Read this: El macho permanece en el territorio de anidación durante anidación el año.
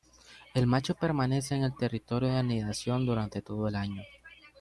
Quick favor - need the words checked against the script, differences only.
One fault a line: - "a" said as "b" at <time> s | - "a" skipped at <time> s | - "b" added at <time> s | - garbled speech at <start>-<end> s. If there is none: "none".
- "anidación" said as "todo" at 3.4 s